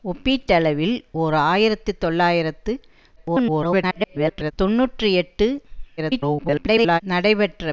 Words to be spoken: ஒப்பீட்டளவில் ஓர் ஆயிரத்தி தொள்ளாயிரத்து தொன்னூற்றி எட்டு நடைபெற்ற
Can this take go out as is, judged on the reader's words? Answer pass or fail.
fail